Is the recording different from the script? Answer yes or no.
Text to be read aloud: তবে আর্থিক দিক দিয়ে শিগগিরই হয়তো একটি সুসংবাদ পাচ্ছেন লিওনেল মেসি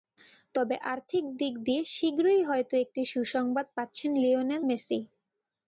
no